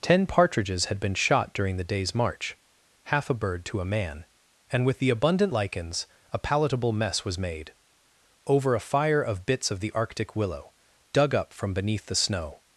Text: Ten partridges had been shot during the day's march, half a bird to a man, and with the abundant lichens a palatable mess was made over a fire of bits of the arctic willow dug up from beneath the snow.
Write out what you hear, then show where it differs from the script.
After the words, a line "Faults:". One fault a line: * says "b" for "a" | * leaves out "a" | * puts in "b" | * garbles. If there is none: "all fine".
Ten partridges had been shot during the day's march, half a bird to a man, and with the abundant lichens a palatable mess was made over a fire of bits of the arctic willow dug up from beneath the snow.
Faults:
all fine